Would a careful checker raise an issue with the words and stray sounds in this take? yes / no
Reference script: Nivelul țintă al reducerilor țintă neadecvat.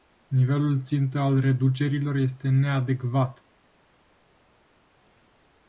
yes